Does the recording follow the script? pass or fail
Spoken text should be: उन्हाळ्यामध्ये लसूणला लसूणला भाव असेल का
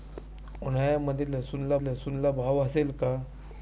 pass